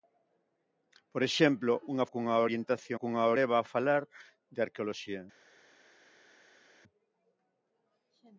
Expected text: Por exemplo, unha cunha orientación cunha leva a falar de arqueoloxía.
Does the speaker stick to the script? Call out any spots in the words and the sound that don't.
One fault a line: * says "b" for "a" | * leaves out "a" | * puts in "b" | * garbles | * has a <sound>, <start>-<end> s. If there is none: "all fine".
all fine